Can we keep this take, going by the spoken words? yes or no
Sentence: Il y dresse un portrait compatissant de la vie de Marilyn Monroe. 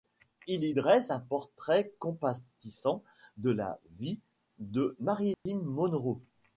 yes